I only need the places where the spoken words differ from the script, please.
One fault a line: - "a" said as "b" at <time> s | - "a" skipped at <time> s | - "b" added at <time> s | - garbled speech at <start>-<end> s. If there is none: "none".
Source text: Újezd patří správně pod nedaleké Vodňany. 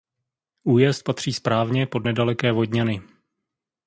none